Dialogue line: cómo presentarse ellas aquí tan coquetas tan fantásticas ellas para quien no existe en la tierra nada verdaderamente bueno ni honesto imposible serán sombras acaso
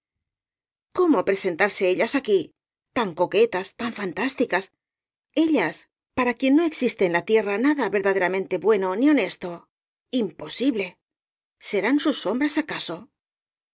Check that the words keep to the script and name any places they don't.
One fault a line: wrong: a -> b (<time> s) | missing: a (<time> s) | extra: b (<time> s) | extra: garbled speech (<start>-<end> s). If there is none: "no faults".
extra: sus (12.0 s)